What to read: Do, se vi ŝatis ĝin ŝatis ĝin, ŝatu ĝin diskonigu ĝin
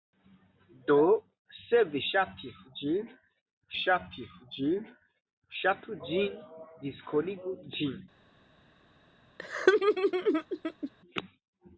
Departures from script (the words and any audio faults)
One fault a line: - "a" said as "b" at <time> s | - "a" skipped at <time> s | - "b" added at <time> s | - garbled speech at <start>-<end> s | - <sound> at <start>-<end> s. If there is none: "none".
- laugh at 9.4-10.9 s